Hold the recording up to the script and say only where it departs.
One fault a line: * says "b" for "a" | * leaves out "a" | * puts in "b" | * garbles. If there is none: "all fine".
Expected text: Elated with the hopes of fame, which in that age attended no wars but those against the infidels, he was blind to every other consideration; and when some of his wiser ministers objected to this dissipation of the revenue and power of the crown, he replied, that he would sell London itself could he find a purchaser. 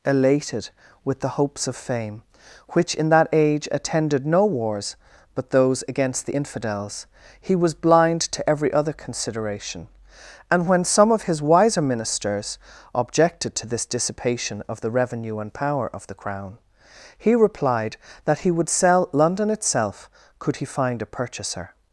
all fine